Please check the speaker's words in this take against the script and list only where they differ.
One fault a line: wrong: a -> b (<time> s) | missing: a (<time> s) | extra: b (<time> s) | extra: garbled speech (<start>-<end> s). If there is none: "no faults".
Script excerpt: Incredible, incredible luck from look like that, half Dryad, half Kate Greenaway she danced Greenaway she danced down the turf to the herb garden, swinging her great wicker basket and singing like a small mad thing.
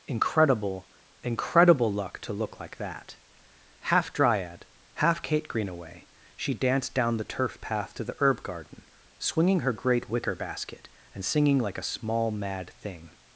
wrong: from -> to (2.2 s)
missing: Greenaway she danced (7.0 s)
extra: path (7.6 s)